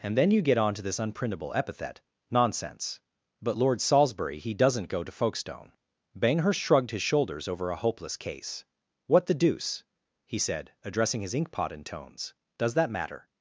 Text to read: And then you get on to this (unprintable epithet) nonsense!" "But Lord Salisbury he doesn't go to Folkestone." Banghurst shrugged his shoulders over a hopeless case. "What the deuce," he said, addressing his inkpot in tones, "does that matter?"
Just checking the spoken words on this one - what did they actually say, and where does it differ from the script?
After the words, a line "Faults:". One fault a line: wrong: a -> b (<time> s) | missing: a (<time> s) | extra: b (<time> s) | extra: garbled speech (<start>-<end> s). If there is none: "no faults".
And then you get on to this (unprintable epithet) nonsense!" "But Lord Salisbury he doesn't go to Folkestone." Banghurst shrugged his shoulders over a hopeless case. "What the deuce," he said, addressing his inkpot in tones, "does that matter?"
Faults:
no faults